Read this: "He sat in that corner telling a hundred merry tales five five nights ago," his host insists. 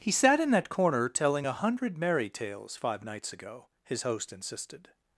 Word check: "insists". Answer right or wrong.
wrong